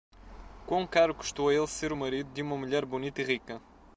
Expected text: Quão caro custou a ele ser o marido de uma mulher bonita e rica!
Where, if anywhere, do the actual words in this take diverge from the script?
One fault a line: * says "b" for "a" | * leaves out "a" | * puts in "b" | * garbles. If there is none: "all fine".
all fine